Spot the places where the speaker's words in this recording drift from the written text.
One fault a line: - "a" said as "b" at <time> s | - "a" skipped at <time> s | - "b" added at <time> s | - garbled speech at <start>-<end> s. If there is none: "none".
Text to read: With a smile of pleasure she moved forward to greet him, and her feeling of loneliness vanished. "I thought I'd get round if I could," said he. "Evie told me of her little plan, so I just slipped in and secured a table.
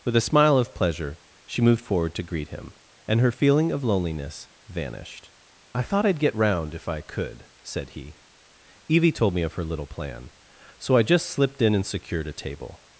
none